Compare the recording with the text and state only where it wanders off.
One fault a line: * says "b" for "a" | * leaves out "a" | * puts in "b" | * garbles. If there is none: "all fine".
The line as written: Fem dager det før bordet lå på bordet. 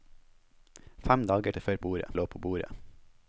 all fine